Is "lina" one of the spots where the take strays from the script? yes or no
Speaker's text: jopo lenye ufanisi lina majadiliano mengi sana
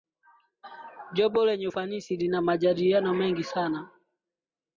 no